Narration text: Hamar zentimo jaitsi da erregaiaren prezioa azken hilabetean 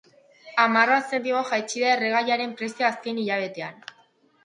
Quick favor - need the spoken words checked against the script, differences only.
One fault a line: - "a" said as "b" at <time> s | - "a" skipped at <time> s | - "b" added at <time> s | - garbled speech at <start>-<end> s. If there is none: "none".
- "bat" added at 0.9 s